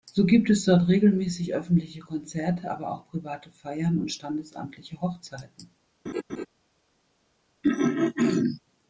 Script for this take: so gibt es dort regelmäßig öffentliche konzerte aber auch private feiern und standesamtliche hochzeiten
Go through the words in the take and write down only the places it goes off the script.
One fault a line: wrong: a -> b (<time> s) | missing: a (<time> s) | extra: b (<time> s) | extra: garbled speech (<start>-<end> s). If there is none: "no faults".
no faults